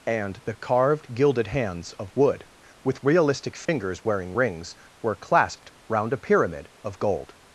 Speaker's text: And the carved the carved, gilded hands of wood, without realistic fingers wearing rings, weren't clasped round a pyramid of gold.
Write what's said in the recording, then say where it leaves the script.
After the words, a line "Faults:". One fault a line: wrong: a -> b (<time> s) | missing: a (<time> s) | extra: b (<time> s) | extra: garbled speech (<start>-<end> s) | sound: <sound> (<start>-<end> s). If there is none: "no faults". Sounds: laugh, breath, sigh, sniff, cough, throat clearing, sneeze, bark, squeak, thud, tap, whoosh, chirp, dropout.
And the carved, gilded hands of wood, with realistic fingers wearing rings, were clasped round a pyramid of gold.
Faults:
missing: the carved (1.1 s)
wrong: without -> with (2.8 s)
sound: dropout (3.7-3.7 s)
wrong: weren't -> were (5.0 s)